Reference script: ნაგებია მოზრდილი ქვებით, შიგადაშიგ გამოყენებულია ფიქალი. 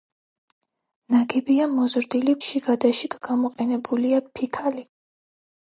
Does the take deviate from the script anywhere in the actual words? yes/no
yes